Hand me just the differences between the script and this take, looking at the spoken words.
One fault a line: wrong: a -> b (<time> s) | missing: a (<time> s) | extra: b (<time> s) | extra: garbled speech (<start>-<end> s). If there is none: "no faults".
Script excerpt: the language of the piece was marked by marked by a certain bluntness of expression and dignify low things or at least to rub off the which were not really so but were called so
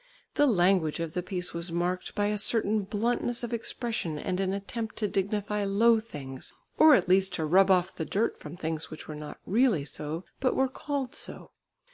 missing: marked by (2.2 s)
extra: an attempt to (4.4 s)
extra: dirt from things (8.0 s)